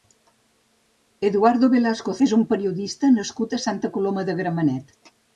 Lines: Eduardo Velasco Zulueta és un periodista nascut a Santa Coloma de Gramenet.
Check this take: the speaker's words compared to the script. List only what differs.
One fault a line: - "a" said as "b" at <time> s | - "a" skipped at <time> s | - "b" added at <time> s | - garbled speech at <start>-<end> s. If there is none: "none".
- "Zulueta" skipped at 2.1 s